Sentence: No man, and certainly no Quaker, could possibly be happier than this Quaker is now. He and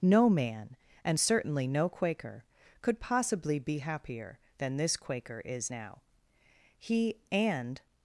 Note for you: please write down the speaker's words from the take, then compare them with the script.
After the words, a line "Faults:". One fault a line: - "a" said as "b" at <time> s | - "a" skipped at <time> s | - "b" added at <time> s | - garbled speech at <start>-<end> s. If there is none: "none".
No man, and certainly no Quaker, could possibly be happier than this Quaker is now. He and
Faults:
none